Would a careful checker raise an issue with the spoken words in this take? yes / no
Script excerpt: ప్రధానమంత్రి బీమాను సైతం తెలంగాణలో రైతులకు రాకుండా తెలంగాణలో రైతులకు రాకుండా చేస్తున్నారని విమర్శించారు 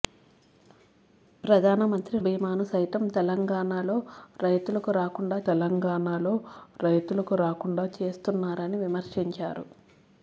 no